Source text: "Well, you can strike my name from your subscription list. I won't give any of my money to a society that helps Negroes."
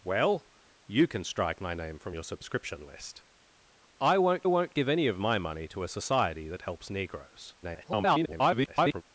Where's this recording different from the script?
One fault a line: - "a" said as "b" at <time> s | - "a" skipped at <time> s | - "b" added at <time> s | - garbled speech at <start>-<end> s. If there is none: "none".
- "won't" added at 4.4 s
- garbled speech at 7.6-9.0 s